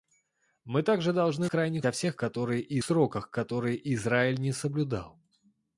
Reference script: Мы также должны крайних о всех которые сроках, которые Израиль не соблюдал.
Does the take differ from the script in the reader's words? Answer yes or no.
no